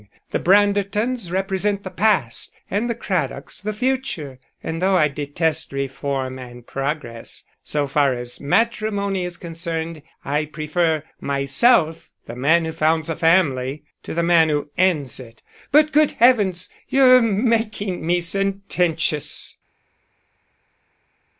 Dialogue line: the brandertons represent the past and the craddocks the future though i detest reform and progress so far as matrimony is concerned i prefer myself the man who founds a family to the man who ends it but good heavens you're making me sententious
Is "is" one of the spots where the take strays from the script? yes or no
no